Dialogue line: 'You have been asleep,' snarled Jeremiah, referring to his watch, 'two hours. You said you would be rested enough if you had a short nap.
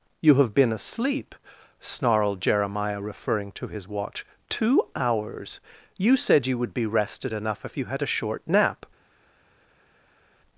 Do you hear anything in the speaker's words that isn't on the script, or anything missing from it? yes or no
no